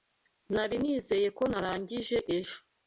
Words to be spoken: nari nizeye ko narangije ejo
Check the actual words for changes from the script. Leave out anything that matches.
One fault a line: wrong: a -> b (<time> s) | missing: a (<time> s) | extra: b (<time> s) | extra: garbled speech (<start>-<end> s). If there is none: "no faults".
no faults